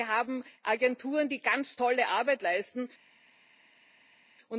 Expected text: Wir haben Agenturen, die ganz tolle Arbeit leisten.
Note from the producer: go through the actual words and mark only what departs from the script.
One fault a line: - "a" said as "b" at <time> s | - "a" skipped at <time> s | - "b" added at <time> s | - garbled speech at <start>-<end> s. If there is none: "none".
none